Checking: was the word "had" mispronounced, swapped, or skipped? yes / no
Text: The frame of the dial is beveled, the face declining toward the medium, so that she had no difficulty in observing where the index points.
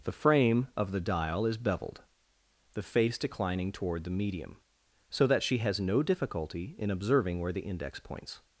yes